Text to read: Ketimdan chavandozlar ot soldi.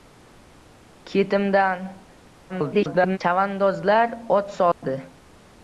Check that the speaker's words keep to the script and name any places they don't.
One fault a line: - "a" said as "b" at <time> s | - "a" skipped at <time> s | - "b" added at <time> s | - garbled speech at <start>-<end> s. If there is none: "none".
- garbled speech at 2.5-3.2 s